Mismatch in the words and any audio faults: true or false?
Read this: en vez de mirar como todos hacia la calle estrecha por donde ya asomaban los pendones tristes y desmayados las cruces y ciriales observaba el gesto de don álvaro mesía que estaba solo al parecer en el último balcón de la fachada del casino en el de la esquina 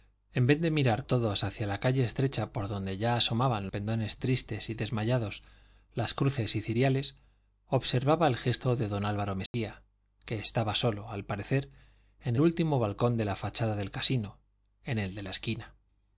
true